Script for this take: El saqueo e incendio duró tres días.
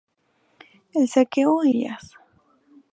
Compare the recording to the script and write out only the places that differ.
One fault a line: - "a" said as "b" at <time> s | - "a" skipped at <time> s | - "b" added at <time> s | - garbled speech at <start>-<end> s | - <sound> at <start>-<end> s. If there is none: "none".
- "incendio duró tres" skipped at 1.7 s